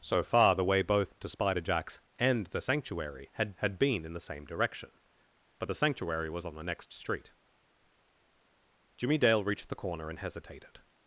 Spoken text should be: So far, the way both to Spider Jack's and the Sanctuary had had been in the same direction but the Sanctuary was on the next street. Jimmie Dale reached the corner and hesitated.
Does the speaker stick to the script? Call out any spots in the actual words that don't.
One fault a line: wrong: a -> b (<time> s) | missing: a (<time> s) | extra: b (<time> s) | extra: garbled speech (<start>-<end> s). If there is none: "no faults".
no faults